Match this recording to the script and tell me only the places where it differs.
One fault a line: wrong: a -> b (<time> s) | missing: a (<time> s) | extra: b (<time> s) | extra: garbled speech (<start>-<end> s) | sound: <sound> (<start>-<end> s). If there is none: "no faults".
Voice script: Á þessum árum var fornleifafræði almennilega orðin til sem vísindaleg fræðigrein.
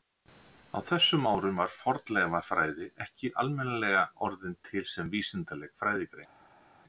extra: ekki (3.1 s)